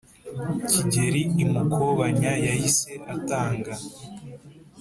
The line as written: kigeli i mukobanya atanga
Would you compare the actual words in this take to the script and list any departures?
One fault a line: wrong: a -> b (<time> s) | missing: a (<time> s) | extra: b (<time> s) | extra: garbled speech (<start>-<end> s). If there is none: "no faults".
extra: yahise (2.5 s)